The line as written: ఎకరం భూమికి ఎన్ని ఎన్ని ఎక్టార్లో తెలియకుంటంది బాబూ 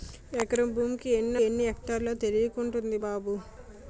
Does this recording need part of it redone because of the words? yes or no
no